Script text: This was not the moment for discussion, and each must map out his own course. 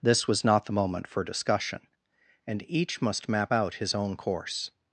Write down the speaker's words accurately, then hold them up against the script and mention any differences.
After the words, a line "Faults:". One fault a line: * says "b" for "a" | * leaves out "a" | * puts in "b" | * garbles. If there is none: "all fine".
This was not the moment for discussion, and each must map out his own course.
Faults:
all fine